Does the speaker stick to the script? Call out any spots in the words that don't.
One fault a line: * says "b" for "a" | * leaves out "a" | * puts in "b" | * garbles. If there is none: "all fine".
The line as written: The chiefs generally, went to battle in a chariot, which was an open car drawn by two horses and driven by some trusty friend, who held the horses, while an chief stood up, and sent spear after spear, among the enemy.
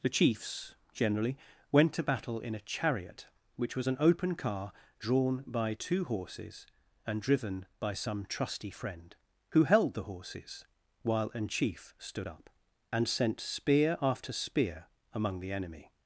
all fine